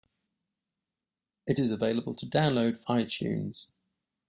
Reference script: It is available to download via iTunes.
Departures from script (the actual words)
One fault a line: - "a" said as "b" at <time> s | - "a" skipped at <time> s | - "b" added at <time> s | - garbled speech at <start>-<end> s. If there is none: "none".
- "via" skipped at 2.8 s